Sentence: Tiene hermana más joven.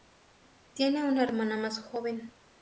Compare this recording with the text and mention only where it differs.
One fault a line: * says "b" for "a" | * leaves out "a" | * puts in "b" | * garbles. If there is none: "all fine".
* puts in "una"